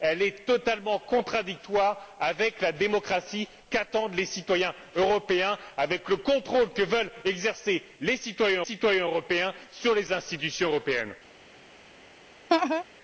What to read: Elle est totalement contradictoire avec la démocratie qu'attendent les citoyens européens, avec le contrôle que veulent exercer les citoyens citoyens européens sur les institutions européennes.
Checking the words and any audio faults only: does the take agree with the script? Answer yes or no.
no